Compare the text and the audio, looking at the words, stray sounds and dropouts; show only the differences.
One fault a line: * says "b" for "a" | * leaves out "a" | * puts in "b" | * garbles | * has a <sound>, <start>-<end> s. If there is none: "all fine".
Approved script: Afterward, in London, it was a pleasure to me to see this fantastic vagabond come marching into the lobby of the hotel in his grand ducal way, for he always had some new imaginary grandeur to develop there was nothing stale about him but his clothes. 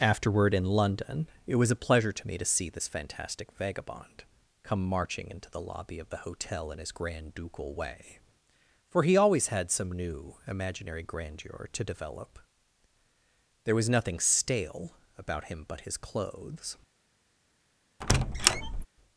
* has a squeak, 18.0-18.9 s